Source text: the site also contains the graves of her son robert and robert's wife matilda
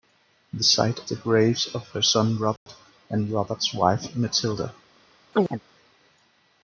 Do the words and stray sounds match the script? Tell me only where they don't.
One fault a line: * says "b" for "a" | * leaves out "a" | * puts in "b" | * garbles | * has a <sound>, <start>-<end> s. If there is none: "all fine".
* leaves out "also contains"
* has a dropout, 2.6-2.7 s
* has a chirp, 5.3-5.6 s